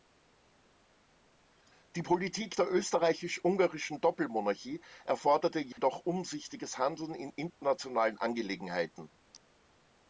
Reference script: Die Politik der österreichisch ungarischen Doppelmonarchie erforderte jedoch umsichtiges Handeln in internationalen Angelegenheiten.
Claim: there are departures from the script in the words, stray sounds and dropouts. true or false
true